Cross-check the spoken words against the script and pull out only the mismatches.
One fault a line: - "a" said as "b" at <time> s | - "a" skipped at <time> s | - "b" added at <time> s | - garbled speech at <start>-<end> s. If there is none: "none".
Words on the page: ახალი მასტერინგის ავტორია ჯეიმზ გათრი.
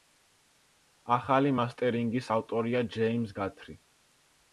none